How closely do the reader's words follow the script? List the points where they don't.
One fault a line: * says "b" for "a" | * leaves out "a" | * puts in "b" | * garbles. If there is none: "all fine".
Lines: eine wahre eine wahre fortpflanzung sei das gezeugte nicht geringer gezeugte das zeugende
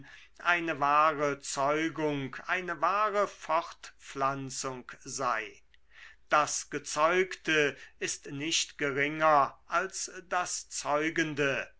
* puts in "zeugung"
* puts in "ist"
* says "als" for "gezeugte"